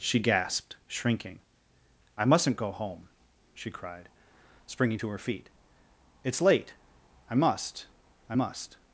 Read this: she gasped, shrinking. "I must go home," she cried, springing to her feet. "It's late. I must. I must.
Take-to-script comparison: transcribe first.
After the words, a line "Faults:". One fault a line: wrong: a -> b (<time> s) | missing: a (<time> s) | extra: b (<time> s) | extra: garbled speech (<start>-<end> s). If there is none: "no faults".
she gasped, shrinking. "I mustn't go home," she cried, springing to her feet. "It's late. I must. I must.
Faults:
wrong: must -> mustn't (2.2 s)